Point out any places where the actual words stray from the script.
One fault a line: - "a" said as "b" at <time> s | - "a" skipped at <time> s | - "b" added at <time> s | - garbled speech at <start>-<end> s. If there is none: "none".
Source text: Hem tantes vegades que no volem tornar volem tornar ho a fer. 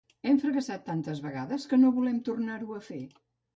- "fracassat" added at 0.4 s
- "volem tornar" skipped at 2.6 s